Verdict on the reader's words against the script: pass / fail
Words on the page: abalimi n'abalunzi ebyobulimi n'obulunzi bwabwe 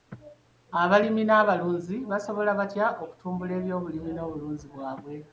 fail